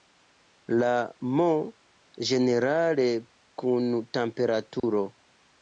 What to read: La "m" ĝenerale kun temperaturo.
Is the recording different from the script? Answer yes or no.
no